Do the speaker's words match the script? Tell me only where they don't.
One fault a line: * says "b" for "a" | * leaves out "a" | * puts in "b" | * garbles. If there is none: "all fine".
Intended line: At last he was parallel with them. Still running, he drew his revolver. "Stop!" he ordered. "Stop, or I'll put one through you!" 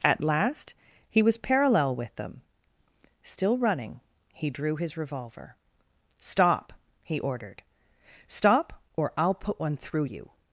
all fine